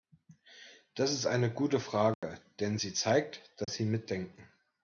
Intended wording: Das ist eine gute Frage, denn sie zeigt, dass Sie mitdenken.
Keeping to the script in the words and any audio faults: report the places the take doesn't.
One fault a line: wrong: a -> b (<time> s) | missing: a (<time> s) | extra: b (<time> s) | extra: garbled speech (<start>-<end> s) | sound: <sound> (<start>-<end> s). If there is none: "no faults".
sound: dropout (2.1-2.2 s)
sound: dropout (3.6-3.7 s)